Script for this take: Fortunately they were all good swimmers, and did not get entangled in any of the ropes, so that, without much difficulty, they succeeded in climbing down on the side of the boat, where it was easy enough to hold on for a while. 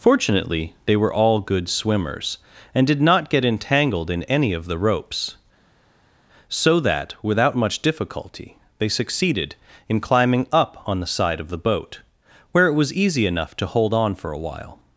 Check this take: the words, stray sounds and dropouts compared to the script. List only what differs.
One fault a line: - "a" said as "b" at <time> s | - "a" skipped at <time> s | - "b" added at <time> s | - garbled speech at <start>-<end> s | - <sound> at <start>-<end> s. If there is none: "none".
- "down" said as "up" at 10.5 s